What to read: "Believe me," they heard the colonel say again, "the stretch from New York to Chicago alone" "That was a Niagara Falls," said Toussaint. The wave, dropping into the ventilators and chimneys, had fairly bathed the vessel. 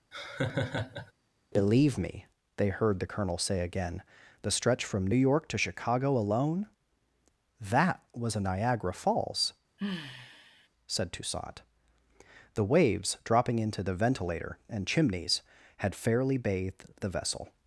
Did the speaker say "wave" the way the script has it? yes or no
no